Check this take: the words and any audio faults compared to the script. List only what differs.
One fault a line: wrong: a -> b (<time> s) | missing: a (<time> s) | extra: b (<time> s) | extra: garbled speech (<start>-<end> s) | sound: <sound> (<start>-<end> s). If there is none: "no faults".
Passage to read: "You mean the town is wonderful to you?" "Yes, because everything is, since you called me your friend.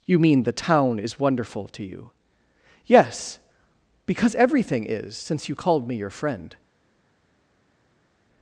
no faults